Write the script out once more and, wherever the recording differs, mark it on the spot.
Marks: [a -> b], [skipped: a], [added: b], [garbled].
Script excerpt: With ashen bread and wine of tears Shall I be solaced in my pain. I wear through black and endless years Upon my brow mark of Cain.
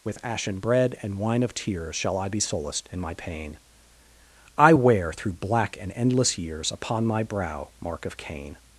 With ashen bread and wine of tears Shall I be solaced in my pain. I wear through black and endless years Upon my brow mark of Cain.